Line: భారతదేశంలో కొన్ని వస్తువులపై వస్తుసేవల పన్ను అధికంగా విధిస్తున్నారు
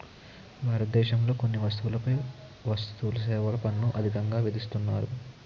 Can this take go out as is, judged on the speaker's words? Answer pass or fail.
pass